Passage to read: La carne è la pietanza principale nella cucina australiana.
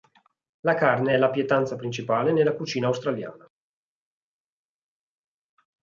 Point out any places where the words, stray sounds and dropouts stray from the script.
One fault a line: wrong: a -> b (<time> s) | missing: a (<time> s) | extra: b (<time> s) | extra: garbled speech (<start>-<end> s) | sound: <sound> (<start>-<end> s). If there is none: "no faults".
no faults